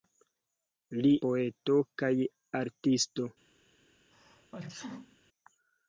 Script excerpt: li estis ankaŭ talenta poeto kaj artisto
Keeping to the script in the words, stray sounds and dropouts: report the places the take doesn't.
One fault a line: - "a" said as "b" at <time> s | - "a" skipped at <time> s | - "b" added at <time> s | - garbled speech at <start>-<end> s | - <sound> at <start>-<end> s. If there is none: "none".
- "estis ankaŭ talenta" skipped at 1.1 s
- sneeze at 4.1-5.2 s